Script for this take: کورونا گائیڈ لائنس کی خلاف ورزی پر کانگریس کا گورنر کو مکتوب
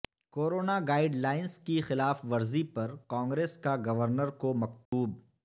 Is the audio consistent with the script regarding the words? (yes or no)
yes